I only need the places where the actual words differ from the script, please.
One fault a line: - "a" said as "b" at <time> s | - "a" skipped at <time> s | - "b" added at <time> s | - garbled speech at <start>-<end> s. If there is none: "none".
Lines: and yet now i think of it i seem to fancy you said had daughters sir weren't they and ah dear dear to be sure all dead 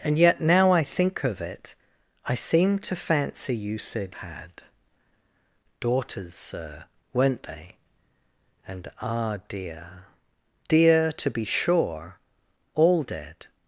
none